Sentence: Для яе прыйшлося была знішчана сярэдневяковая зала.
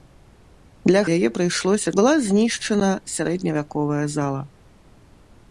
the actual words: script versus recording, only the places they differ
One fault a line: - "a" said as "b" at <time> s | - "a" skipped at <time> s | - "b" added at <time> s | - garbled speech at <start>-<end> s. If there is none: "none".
none